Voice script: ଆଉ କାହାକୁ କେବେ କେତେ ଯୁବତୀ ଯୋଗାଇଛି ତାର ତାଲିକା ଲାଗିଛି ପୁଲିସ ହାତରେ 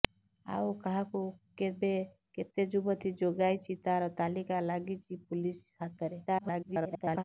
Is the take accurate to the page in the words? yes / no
no